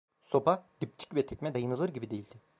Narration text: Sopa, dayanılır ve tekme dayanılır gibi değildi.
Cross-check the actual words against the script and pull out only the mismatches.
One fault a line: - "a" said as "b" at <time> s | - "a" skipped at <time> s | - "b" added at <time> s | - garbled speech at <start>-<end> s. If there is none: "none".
- "dayanılır" said as "dipçik" at 0.8 s